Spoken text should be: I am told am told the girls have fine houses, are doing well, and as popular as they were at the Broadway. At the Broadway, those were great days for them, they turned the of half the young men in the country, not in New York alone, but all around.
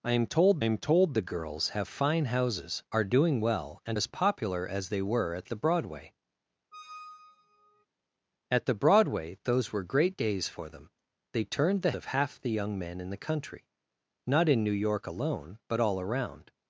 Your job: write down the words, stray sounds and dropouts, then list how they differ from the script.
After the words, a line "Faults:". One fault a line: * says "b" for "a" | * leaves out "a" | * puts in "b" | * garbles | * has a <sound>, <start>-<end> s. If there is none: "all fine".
I am told am told the girls have fine houses, are doing well, and as popular as they were at the Broadway. At the Broadway, those were great days for them, they turned the of half the young men in the country, not in New York alone, but all around.
Faults:
* has a squeak, 6.7-7.9 s